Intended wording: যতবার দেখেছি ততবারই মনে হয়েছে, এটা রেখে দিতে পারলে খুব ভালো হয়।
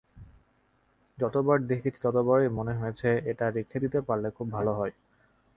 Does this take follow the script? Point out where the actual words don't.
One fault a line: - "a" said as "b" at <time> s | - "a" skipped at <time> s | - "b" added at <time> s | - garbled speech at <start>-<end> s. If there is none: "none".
none